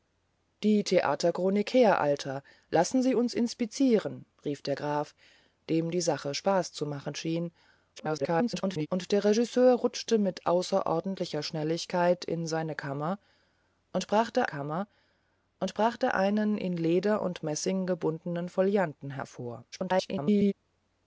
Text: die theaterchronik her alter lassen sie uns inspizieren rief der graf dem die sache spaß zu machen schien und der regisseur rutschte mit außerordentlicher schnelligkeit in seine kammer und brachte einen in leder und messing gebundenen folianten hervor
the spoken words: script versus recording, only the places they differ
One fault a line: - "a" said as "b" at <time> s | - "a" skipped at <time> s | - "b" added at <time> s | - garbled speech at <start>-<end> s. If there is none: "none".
- garbled speech at 8.0-8.9 s
- "kammer und brachte" added at 14.4 s
- garbled speech at 19.7-20.5 s